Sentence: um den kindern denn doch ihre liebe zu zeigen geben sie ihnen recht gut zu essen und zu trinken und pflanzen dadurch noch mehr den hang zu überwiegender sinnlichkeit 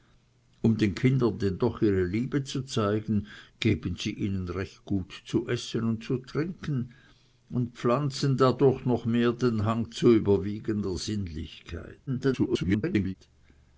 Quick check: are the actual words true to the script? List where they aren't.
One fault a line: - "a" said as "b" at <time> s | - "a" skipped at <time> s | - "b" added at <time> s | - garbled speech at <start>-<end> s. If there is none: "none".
- garbled speech at 12.1-13.1 s